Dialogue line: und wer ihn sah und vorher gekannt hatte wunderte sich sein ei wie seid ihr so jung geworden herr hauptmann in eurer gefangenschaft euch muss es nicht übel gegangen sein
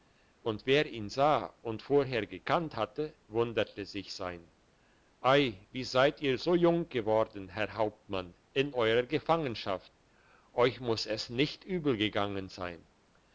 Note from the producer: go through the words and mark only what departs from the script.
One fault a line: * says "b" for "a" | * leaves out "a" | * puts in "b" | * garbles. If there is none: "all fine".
all fine